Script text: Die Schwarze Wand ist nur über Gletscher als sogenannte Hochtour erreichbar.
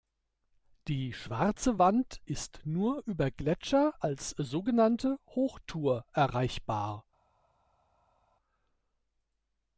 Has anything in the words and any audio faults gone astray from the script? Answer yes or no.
no